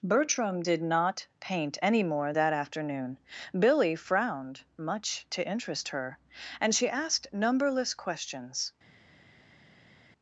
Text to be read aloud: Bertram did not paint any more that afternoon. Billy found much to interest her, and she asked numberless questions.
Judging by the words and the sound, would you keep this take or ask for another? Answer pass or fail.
fail